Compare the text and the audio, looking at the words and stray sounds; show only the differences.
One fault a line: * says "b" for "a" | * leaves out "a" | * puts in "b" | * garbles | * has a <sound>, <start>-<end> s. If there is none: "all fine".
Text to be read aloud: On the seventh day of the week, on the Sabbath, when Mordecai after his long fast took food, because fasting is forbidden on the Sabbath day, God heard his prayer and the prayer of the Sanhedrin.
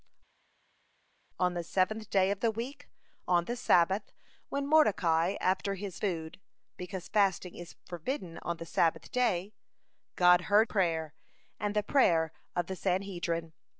* leaves out "long fast took"
* leaves out "his"